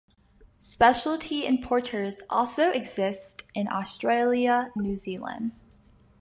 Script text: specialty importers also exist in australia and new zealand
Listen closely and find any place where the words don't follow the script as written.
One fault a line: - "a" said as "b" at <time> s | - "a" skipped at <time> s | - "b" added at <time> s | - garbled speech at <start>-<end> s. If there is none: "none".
- "and" skipped at 4.7 s